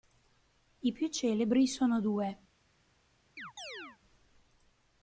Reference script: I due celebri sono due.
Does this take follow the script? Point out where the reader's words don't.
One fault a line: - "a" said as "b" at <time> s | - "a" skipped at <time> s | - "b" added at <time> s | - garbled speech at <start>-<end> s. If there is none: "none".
- "due" said as "più" at 0.9 s